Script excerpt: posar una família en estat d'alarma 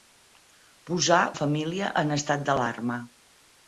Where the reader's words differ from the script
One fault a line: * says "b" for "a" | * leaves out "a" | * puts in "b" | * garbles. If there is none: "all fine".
* leaves out "una"